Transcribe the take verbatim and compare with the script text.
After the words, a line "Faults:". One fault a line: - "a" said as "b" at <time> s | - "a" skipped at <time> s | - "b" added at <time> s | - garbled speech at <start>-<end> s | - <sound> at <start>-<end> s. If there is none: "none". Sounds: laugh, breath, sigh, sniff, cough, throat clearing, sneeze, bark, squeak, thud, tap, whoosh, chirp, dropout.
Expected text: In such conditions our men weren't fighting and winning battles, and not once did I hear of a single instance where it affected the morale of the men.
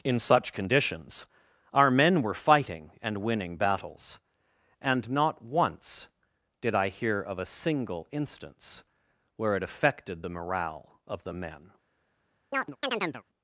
In such conditions our men were fighting and winning battles, and not once did I hear of a single instance where it affected the morale of the men.
Faults:
- "weren't" said as "were" at 2.2 s
- chirp at 12.5-13.2 s